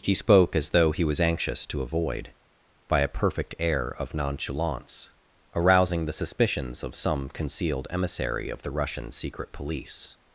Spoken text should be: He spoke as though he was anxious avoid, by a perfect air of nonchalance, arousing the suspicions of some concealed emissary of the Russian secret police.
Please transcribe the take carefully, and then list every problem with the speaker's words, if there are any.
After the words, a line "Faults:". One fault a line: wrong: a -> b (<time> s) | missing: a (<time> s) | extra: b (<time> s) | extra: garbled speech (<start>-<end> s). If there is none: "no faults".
He spoke as though he was anxious to avoid, by a perfect air of nonchalance, arousing the suspicions of some concealed emissary of the Russian secret police.
Faults:
extra: to (1.7 s)